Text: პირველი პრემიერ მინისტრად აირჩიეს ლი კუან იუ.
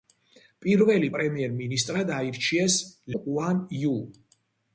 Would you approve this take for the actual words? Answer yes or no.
no